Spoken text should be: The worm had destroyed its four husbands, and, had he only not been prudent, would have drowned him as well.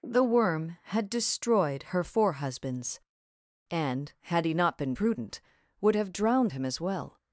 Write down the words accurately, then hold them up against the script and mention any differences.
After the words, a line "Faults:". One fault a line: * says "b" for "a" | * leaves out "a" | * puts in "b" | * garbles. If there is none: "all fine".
The worm had destroyed her four husbands, and, had he not been prudent, would have drowned him as well.
Faults:
* says "her" for "its"
* leaves out "only"